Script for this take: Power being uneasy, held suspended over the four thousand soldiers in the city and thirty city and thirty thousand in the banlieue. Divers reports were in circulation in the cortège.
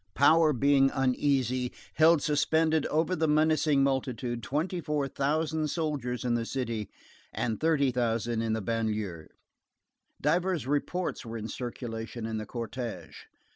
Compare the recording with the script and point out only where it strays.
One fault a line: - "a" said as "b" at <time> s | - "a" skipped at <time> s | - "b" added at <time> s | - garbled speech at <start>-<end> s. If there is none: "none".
- "menacing multitude twenty" added at 3.3 s
- "city and thirty" skipped at 7.9 s